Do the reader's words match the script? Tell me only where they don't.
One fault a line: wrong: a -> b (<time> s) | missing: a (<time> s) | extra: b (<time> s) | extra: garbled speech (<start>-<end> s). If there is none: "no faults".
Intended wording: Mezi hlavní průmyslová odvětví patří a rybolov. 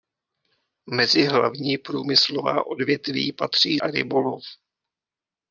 no faults